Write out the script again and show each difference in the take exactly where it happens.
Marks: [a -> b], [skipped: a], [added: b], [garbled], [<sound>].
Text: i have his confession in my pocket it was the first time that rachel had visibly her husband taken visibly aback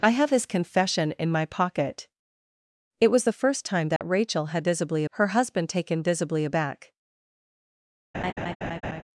i have his confession in my pocket it was the first time that [dropout] rachel had visibly her husband taken visibly aback [laugh]